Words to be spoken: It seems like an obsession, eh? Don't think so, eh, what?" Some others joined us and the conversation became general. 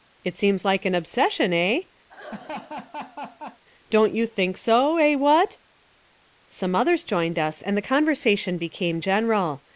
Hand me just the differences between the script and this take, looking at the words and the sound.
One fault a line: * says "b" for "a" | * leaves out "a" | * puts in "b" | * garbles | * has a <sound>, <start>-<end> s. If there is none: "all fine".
* has a laugh, 2.1-3.6 s
* puts in "you"